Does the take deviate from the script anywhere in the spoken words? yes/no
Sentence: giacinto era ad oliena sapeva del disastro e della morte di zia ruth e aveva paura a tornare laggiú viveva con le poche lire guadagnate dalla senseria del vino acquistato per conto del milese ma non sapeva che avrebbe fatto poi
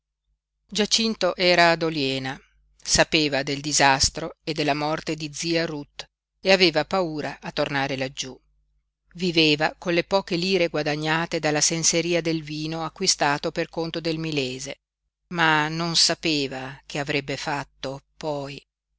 no